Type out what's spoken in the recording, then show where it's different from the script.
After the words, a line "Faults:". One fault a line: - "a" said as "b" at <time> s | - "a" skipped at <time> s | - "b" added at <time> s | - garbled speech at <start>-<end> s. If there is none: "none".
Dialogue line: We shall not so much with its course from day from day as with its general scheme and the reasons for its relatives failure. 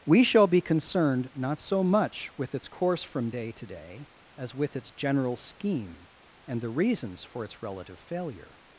We shall be concerned not so much with its course from day to day as with its general scheme and the reasons for its relative failure.
Faults:
- "be concerned" added at 0.5 s
- "from" said as "to" at 3.5 s
- "relatives" said as "relative" at 7.6 s